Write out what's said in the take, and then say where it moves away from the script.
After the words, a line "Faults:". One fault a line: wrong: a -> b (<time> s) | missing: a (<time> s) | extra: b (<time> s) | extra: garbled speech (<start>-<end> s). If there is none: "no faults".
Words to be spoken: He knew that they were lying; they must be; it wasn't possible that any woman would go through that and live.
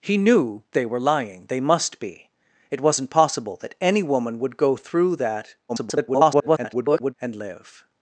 He knew they were lying; they must be; it wasn't possible that any woman would go through that [garbled] and live.
Faults:
missing: that (0.6 s)
extra: garbled speech (5.7-7.1 s)